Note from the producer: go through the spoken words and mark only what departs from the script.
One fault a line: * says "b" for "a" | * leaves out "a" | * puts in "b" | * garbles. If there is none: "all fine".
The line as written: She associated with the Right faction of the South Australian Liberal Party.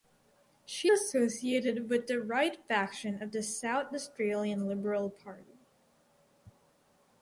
all fine